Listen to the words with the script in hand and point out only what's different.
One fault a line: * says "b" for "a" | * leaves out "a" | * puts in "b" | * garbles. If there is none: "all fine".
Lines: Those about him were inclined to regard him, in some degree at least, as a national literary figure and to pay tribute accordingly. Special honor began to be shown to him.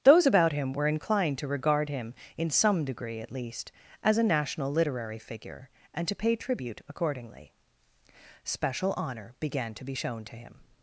all fine